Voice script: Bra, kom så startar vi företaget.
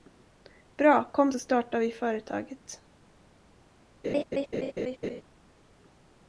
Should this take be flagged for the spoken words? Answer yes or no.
no